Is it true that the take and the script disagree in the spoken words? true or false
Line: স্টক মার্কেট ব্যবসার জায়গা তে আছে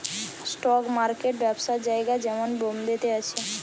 true